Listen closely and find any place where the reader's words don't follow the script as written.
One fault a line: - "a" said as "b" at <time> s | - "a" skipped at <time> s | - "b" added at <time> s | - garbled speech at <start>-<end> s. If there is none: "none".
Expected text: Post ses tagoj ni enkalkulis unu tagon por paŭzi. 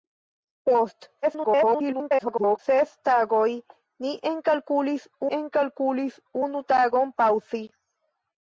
- garbled speech at 1.2-2.6 s
- "enkalkulis" added at 5.4 s
- "por" skipped at 7.1 s